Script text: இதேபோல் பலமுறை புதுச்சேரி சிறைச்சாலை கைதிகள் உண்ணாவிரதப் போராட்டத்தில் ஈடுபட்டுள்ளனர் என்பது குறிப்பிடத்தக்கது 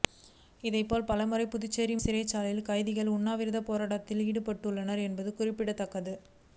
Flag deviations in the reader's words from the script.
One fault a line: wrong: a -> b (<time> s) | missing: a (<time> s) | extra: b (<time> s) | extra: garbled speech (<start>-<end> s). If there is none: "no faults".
no faults